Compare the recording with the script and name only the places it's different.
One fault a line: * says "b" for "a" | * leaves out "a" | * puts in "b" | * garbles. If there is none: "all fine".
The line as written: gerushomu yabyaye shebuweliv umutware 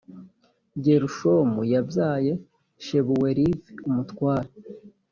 all fine